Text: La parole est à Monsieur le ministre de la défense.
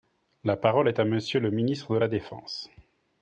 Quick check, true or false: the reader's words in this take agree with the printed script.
true